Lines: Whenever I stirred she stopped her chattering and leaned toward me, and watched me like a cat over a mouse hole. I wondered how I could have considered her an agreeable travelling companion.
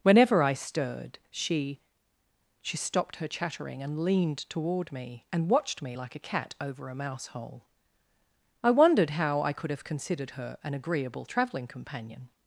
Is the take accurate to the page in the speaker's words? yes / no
no